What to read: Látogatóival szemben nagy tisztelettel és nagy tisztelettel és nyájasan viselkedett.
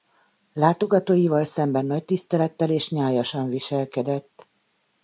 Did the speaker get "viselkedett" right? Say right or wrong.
right